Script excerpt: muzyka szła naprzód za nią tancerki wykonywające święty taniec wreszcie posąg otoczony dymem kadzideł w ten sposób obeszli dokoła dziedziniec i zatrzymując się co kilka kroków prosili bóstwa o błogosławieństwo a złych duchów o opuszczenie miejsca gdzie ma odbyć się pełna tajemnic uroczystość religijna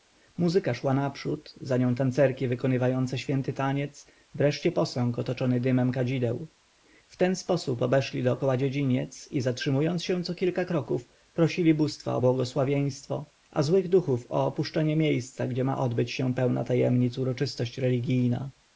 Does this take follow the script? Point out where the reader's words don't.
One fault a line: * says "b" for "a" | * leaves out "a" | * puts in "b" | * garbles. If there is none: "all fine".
all fine